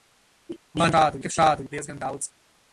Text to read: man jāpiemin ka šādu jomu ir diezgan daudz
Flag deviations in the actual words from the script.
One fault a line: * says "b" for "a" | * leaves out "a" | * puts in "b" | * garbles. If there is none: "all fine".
* says "šādu" for "jāpiemin"
* leaves out "jomu"